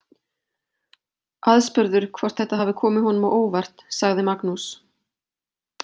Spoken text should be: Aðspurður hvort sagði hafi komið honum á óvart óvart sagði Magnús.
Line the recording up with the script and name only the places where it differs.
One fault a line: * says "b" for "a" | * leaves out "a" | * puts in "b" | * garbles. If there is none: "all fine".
* says "þetta" for "sagði"
* leaves out "óvart"